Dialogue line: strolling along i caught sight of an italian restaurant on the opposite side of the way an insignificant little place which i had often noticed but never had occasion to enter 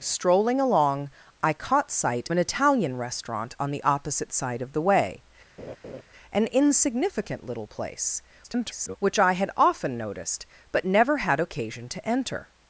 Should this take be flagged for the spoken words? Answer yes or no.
yes